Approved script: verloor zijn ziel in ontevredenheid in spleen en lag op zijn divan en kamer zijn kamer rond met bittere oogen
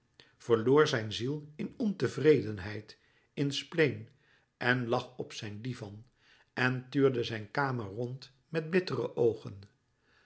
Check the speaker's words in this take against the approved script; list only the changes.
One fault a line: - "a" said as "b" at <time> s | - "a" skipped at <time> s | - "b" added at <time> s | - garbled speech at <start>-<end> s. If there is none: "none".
- "kamer" said as "tuurde" at 6.9 s